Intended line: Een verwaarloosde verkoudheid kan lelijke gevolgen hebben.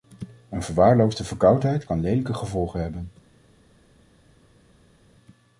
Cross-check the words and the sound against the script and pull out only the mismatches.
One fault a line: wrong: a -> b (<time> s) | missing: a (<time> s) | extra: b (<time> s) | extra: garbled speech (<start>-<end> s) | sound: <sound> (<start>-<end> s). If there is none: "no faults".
no faults